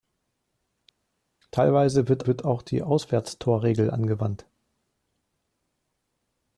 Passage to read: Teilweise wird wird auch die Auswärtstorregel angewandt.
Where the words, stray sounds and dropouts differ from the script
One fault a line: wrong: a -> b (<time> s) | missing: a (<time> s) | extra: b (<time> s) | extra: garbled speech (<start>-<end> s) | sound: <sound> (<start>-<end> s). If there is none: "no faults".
no faults